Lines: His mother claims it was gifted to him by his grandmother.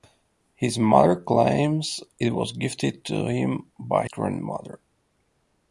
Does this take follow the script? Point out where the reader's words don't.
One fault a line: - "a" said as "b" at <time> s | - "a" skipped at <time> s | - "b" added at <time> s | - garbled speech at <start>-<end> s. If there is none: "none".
- "his" skipped at 4.1 s